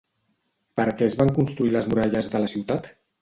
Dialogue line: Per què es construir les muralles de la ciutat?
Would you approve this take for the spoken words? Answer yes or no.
no